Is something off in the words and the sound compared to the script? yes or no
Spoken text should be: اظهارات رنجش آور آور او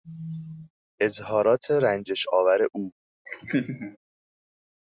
yes